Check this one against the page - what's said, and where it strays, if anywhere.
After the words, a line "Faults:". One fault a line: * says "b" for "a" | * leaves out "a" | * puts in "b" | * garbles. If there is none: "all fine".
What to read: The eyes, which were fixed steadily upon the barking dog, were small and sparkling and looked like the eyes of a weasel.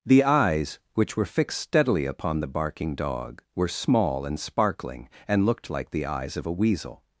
The eyes, which were fixed steadily upon the barking dog, were small and sparkling and looked like the eyes of a weasel.
Faults:
all fine